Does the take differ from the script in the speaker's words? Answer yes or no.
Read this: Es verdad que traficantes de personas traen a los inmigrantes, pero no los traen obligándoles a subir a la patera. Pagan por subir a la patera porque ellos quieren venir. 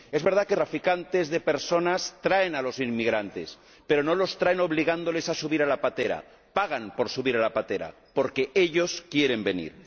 no